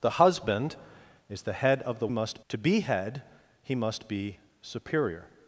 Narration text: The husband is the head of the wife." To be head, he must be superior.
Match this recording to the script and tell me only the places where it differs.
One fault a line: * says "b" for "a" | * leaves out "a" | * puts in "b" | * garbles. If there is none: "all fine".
* says "must" for "wife"